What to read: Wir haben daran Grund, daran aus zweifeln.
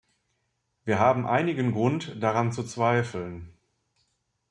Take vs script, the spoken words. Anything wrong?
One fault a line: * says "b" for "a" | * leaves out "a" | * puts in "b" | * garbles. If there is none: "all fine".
* says "einigen" for "daran"
* says "zu" for "aus"